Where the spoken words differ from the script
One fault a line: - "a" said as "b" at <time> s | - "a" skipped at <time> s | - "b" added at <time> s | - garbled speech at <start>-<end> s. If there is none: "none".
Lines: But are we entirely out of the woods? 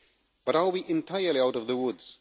none